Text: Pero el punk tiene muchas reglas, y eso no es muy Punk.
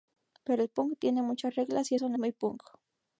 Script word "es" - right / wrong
wrong